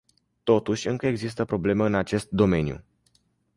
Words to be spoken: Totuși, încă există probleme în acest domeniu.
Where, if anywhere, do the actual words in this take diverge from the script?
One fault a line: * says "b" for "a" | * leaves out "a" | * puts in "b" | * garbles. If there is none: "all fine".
all fine